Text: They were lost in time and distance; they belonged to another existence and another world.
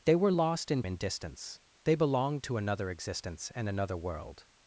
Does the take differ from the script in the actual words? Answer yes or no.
yes